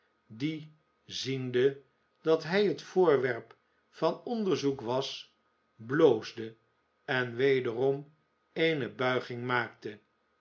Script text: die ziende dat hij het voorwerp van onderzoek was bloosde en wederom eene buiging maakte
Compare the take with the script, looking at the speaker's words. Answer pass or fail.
pass